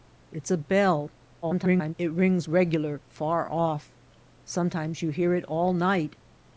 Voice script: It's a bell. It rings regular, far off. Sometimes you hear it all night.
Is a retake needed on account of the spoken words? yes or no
yes